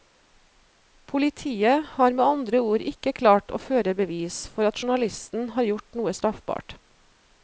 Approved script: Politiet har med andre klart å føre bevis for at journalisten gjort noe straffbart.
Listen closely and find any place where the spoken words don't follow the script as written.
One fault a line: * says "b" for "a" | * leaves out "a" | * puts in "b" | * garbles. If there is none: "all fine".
* puts in "ord ikke"
* puts in "har"